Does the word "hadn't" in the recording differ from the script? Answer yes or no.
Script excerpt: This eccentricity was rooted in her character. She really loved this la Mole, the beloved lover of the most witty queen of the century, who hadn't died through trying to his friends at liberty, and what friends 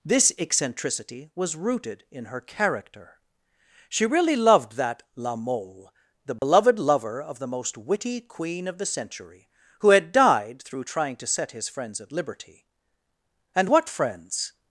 yes